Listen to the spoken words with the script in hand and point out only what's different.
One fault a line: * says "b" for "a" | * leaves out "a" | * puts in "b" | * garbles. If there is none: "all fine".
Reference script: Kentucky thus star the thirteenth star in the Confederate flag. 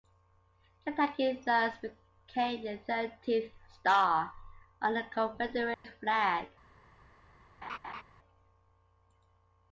* says "became" for "star"
* says "on" for "in"